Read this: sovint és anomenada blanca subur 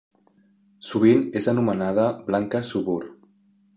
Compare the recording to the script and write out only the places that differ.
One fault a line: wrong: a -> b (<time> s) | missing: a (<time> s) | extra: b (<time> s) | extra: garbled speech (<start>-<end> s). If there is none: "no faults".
no faults